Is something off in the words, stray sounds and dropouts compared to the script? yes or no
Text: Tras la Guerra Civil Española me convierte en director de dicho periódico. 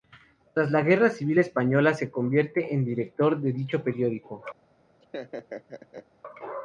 yes